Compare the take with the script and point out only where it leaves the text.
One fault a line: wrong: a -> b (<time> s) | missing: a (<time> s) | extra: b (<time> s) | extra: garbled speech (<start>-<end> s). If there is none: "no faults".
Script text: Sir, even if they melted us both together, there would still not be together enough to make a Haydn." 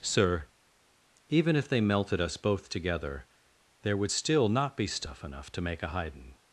wrong: together -> stuff (4.9 s)